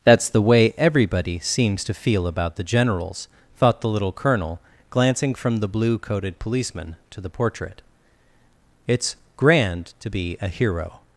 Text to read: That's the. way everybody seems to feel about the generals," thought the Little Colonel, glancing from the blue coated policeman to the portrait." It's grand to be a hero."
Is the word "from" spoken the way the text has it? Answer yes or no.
yes